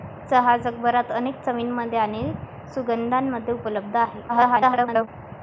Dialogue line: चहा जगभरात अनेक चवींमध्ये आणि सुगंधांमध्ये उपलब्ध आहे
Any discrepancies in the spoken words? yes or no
yes